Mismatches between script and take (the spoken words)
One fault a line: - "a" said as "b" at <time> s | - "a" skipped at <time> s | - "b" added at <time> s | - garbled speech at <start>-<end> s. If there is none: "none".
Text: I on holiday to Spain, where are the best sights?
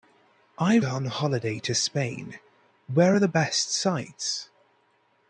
none